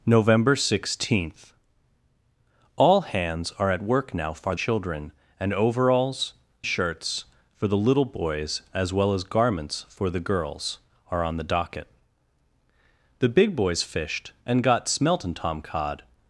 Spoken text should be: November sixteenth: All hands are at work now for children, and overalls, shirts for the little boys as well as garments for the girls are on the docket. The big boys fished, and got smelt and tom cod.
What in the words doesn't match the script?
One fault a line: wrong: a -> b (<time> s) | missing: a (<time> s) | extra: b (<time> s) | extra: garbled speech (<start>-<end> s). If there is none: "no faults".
no faults